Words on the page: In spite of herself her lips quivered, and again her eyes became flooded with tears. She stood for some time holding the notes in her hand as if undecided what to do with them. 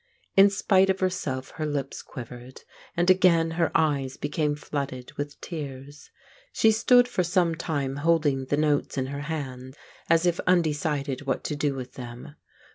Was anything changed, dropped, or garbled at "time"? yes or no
no